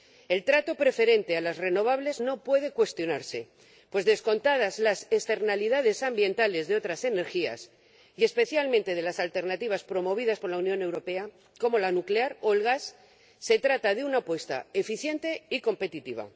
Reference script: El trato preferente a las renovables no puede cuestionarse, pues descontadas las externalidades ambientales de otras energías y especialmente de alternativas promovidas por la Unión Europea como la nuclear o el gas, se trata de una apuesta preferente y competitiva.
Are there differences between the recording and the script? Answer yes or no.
yes